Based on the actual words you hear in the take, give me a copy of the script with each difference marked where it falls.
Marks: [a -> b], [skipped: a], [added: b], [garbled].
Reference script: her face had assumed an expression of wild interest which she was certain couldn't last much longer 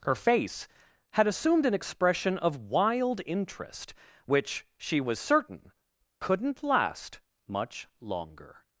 her face had assumed an expression of wild interest which she was certain couldn't last much longer